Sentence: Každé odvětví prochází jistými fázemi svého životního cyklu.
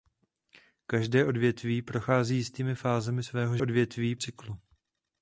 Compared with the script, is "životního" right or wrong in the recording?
wrong